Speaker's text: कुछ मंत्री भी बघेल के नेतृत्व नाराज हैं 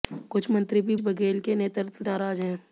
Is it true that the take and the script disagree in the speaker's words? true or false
false